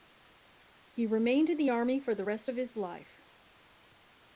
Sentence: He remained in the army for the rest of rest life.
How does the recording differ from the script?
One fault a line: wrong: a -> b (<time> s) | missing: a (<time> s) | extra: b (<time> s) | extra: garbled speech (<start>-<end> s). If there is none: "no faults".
wrong: rest -> his (2.6 s)